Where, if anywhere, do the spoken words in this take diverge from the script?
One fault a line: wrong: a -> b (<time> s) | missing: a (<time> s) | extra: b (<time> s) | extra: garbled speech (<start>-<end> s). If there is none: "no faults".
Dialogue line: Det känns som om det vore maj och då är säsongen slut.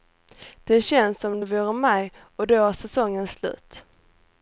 no faults